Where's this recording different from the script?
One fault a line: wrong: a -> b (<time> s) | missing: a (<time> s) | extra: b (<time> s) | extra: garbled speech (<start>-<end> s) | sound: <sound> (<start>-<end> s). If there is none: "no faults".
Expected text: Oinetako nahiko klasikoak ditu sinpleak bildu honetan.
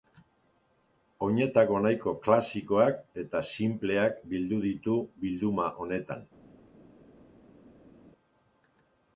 wrong: ditu -> eta (3.2 s)
extra: ditu bilduma (4.7 s)